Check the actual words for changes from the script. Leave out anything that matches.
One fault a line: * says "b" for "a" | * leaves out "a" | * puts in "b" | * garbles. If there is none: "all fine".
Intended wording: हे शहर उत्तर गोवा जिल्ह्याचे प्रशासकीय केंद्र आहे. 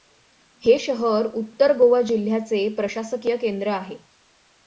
all fine